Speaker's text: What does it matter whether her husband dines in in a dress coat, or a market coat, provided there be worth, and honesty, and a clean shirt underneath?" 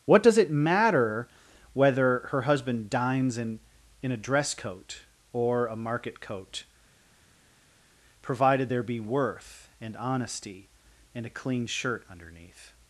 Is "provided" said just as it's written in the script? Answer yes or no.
yes